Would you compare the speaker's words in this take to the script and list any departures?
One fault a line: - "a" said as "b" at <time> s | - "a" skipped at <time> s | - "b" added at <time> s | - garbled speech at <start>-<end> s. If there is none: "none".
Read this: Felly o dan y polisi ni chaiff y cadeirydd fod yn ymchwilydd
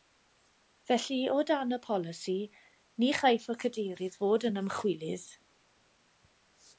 none